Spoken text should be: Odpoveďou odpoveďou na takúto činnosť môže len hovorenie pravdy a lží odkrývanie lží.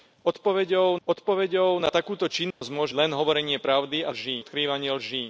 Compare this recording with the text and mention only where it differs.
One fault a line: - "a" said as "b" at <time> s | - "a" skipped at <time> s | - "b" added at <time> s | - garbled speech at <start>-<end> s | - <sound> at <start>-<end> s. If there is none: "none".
- dropout at 2.5-2.6 s